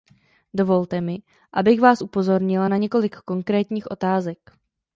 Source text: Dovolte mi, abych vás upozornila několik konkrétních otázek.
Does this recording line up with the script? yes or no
no